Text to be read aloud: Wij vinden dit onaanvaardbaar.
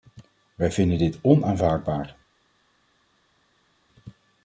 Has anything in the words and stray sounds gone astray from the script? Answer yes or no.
no